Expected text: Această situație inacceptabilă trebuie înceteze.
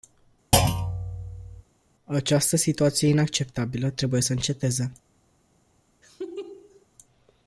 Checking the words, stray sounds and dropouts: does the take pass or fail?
fail